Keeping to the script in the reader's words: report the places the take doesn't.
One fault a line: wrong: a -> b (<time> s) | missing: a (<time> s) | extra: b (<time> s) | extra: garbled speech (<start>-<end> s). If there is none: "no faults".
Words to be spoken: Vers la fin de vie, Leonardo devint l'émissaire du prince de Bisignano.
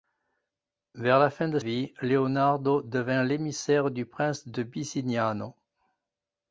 no faults